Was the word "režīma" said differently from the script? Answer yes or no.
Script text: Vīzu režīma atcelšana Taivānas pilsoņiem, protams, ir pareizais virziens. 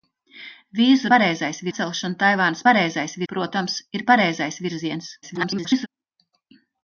yes